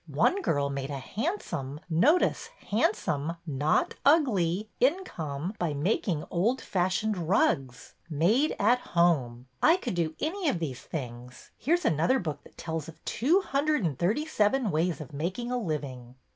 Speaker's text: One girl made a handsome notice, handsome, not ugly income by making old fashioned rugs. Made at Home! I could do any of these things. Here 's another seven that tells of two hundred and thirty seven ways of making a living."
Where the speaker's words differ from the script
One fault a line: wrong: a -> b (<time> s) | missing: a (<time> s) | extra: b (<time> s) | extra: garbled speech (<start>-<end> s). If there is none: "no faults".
wrong: seven -> book (12.2 s)